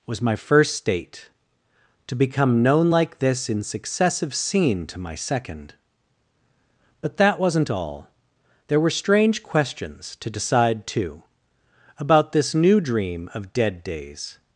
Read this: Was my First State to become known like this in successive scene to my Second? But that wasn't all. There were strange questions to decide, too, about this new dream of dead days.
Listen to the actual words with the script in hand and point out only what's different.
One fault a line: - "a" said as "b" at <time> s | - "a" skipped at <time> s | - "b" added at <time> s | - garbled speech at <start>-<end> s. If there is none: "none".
none